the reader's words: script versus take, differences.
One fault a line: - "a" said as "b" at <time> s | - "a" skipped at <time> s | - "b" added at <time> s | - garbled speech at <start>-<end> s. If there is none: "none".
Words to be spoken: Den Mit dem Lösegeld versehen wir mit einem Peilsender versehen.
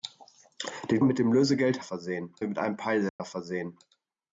none